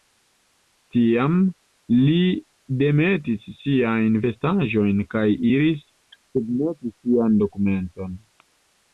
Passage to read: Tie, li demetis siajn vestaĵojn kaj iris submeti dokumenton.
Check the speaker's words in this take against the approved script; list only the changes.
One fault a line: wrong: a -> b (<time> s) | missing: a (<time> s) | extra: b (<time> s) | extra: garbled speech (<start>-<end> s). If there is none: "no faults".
wrong: Tie -> Tiam (0.9 s)
extra: sian (7.0 s)